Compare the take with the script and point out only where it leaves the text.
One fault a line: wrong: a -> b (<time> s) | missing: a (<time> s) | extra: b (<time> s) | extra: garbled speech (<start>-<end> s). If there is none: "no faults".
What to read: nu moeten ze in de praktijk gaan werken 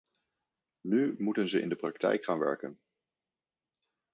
no faults